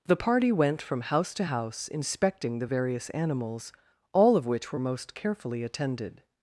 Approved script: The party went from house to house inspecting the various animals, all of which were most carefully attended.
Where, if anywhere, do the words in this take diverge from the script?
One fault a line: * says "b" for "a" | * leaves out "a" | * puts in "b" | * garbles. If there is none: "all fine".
all fine